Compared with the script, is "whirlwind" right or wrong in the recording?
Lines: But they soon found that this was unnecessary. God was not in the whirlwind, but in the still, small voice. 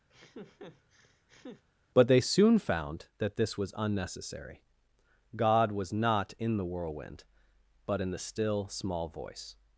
right